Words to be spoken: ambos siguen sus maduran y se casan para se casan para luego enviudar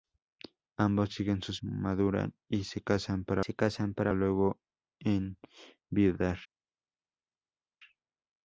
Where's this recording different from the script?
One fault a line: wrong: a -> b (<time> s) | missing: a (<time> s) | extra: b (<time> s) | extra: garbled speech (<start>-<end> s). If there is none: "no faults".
no faults